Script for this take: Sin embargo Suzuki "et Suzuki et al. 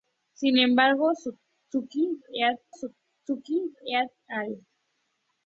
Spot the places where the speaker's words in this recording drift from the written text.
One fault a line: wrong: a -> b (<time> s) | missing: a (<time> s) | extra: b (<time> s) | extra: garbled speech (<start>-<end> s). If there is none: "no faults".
no faults